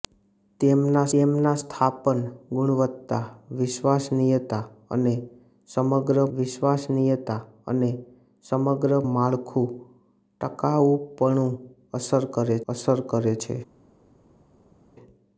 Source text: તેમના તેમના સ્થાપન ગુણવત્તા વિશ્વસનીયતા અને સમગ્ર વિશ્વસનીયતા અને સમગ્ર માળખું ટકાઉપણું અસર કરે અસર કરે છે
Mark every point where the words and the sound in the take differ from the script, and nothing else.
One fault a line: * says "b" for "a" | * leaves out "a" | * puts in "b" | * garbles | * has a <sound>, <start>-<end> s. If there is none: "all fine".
all fine